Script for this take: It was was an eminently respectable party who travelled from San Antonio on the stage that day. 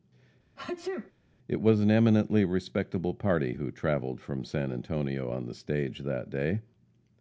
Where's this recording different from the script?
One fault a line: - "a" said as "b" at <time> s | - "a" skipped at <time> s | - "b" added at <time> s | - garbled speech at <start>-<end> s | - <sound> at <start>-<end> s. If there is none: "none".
- sneeze at 0.6-1.1 s
- "was" skipped at 1.8 s